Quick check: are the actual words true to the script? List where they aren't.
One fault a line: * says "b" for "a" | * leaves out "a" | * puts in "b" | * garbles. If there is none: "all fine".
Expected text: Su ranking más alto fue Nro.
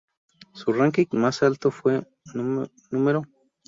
all fine